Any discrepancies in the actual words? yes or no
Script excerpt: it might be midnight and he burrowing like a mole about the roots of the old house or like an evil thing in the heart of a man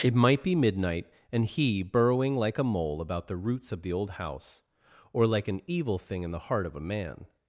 no